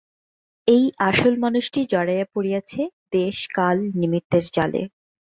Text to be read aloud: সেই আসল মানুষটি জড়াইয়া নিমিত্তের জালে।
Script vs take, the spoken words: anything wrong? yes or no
yes